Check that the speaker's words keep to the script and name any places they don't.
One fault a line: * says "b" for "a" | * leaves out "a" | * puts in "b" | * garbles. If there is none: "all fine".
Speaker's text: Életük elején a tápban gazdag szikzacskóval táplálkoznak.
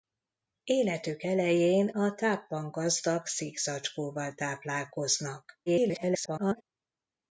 * garbles